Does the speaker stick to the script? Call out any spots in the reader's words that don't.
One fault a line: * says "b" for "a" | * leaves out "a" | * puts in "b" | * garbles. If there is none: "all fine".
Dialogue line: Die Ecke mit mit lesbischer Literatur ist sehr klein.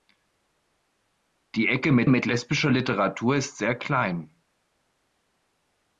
all fine